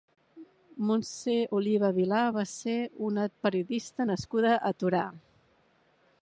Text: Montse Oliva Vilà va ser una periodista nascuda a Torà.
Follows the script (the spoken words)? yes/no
yes